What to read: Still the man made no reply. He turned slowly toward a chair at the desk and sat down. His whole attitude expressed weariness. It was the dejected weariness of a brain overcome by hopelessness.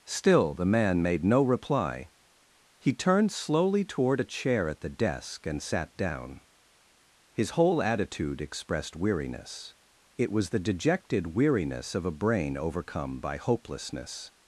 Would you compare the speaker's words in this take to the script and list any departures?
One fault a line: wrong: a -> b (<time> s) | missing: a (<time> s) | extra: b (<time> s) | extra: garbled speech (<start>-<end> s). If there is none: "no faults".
no faults